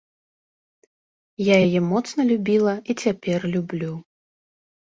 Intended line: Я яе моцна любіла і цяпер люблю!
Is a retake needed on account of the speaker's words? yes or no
no